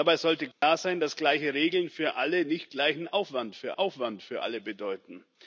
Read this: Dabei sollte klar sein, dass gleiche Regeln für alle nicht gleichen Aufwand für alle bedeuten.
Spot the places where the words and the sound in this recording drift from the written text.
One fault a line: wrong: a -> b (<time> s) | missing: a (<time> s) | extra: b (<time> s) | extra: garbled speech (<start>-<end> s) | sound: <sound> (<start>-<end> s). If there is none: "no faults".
sound: dropout (0.5-0.6 s)
extra: Aufwand für (3.7 s)